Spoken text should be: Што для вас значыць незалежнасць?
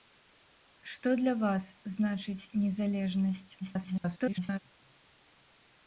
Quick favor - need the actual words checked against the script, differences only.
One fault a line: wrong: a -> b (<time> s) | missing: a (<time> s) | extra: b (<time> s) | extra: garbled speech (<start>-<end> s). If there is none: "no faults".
extra: garbled speech (3.6-4.6 s)